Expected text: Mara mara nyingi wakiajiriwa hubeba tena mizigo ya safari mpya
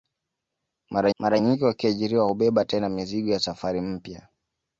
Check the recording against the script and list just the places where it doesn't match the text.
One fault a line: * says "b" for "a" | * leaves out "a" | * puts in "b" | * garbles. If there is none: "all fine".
all fine